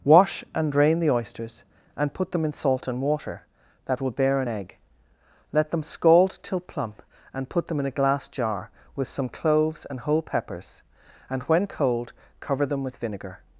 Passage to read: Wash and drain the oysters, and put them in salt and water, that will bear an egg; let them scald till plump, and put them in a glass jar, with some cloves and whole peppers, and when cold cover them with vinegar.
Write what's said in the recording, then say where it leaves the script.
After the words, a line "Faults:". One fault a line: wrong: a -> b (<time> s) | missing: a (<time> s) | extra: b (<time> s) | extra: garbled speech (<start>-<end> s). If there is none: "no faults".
Wash and drain the oysters, and put them in salt and water, that will bear an egg; let them scald till plump, and put them in a glass jar, with some cloves and whole peppers, and when cold cover them with vinegar.
Faults:
no faults